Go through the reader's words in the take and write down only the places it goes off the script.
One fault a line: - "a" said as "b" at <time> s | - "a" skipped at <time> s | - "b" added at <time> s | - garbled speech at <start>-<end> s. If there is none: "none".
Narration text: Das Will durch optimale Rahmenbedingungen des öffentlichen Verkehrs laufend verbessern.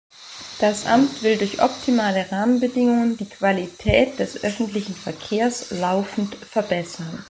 - "Amt" added at 0.8 s
- "die Qualität" added at 3.2 s